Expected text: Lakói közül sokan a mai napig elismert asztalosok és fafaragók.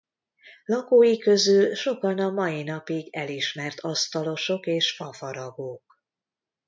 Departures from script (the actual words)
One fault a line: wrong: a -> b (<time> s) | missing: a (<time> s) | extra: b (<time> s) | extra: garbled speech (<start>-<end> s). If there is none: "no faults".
no faults